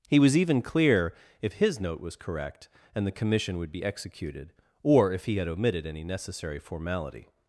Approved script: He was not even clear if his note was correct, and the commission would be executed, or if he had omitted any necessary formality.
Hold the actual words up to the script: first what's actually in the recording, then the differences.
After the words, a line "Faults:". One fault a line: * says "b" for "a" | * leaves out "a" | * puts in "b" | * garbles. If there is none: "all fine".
He was even clear if his note was correct, and the commission would be executed, or if he had omitted any necessary formality.
Faults:
* leaves out "not"